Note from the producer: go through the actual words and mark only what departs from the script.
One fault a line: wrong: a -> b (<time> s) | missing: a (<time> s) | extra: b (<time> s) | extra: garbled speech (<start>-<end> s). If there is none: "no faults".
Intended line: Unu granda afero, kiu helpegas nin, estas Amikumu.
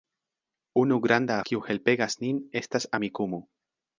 missing: afero (1.4 s)